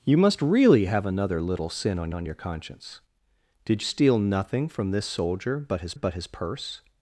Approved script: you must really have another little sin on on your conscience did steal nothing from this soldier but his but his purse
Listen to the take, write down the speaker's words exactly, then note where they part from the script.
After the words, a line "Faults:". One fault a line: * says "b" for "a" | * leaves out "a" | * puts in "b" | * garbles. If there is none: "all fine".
you must really have another little sin on on your conscience did steal nothing from this soldier but his but his purse
Faults:
all fine